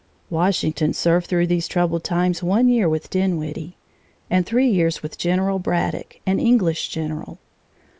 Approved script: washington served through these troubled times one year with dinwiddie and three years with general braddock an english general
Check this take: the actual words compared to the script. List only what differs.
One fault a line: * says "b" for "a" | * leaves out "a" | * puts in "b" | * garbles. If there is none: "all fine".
all fine